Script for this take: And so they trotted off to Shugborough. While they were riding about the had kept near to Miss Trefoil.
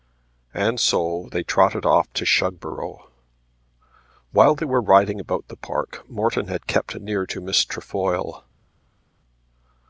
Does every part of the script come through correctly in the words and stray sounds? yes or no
no